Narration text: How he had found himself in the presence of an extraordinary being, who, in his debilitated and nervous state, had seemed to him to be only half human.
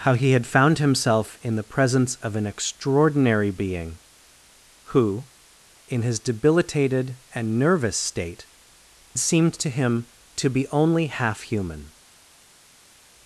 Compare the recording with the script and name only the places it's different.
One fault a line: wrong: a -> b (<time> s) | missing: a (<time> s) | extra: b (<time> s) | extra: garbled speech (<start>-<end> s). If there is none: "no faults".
missing: had (8.5 s)